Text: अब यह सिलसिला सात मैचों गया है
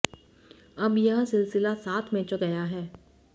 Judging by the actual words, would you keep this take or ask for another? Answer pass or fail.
pass